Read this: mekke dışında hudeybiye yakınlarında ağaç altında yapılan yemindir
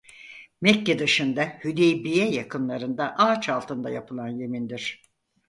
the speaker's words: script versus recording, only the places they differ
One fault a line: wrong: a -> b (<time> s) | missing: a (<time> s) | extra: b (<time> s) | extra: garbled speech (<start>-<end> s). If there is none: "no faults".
no faults